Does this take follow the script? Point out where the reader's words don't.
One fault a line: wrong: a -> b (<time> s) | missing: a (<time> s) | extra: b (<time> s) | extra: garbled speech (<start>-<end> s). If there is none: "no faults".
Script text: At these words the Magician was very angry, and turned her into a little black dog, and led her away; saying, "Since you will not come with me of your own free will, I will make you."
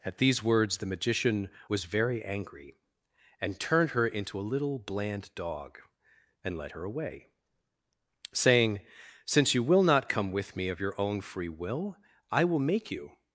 wrong: black -> bland (4.8 s)